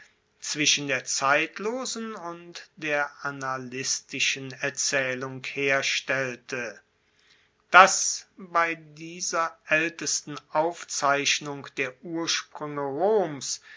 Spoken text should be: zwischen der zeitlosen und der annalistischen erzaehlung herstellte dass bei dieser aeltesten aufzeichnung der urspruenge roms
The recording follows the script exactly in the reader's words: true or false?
true